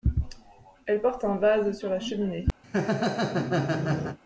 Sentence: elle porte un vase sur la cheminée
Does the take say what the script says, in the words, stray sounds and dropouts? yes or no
no